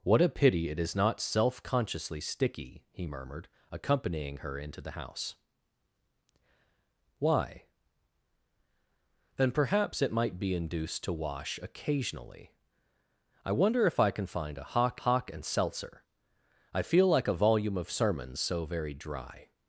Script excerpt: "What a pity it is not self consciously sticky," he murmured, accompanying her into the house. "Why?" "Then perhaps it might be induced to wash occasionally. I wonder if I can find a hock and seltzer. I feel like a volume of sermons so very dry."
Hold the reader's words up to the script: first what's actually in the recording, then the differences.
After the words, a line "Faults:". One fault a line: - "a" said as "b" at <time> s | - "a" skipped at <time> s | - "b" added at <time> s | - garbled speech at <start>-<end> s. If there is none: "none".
"What a pity it is not self consciously sticky," he murmured, accompanying her into the house. "Why?" "Then perhaps it might be induced to wash occasionally. I wonder if I can find a hock hock and seltzer. I feel like a volume of sermons so very dry."
Faults:
- "hock" added at 15.0 s